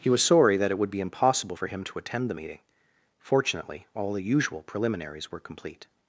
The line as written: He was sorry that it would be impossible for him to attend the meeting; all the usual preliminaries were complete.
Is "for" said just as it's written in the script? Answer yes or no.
yes